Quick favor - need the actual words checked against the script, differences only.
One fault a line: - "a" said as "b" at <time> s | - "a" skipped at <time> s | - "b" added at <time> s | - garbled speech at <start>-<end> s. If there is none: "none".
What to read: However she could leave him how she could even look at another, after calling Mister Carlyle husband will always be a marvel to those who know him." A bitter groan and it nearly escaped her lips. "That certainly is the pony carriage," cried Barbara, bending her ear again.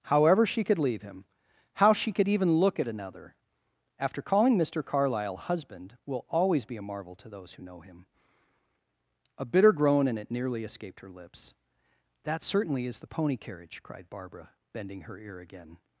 none